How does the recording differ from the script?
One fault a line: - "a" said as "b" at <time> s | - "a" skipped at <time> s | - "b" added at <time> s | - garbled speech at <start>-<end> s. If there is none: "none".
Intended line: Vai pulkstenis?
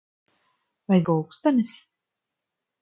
none